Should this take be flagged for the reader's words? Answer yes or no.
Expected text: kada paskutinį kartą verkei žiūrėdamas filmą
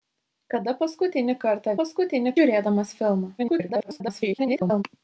yes